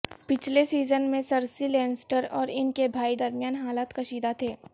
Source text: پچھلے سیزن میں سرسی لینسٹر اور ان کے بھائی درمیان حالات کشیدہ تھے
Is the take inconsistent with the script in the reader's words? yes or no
no